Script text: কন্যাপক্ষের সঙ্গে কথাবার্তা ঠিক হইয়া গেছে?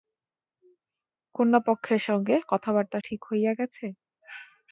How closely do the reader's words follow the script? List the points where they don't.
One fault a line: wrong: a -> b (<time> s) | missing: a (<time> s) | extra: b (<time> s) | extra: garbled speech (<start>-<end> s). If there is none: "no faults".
no faults